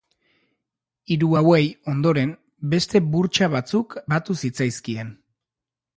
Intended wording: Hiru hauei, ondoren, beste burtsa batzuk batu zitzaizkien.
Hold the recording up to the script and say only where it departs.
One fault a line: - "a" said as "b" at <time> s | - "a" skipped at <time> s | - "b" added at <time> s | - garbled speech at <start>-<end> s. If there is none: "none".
none